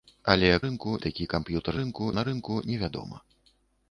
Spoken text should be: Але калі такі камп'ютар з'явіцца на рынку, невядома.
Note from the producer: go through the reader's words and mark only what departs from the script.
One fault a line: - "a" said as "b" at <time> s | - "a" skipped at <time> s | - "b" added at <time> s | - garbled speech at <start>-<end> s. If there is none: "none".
- "калі" said as "рынку" at 0.7 s
- "з'явіцца" said as "рынку" at 1.8 s